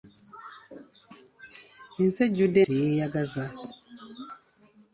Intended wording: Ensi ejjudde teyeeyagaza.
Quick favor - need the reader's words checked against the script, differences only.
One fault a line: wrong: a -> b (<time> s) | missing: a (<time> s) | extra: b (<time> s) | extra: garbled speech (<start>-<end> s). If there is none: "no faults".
no faults